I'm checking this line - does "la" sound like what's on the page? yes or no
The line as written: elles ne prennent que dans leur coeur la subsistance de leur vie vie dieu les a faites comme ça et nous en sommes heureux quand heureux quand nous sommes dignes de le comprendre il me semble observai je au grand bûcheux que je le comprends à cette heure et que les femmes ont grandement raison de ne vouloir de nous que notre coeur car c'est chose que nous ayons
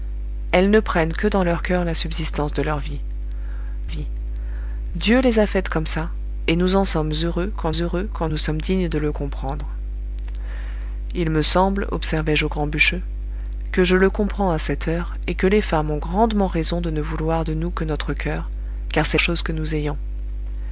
yes